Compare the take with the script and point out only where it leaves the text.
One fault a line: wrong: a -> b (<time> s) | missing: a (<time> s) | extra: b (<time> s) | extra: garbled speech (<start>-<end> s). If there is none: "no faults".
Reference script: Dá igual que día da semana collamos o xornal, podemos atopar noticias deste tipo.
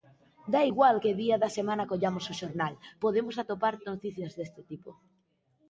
no faults